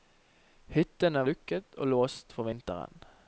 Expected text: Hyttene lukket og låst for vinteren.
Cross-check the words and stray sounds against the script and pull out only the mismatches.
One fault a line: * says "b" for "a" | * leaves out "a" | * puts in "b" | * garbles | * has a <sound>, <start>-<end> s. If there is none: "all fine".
all fine